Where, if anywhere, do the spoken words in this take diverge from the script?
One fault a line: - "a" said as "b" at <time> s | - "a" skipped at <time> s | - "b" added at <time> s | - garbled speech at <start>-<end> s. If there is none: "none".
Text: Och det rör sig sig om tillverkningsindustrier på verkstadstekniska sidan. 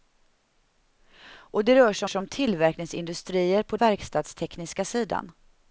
none